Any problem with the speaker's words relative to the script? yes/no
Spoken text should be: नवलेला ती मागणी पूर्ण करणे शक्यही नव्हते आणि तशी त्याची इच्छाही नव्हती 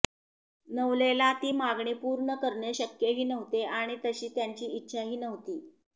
no